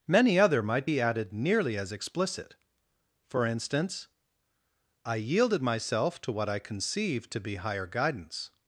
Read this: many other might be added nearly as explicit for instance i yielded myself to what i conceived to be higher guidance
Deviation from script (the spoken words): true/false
false